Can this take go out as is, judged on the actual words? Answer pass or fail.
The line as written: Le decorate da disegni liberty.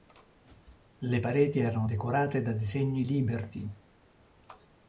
fail